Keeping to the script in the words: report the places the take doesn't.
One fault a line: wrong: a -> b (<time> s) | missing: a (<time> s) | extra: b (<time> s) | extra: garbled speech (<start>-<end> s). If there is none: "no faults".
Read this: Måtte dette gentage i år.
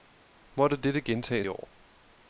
no faults